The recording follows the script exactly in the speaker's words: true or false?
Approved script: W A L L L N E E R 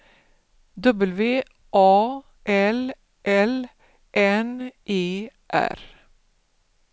false